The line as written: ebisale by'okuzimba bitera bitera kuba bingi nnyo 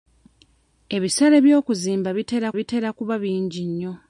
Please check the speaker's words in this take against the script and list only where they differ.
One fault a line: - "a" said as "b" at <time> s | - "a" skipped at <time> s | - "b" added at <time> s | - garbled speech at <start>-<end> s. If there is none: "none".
none